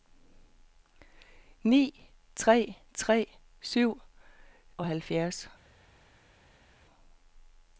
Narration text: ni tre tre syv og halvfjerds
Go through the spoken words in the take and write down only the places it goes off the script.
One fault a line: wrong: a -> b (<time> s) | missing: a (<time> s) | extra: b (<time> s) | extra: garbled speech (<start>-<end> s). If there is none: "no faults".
no faults